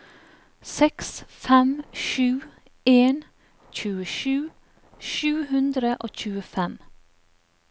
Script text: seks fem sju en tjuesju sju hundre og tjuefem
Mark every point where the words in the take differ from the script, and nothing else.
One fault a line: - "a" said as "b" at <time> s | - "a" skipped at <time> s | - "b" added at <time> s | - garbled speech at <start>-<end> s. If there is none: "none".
none